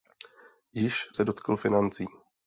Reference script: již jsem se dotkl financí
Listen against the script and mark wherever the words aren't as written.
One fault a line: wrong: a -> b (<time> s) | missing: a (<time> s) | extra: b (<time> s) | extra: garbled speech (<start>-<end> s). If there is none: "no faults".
missing: jsem (1.1 s)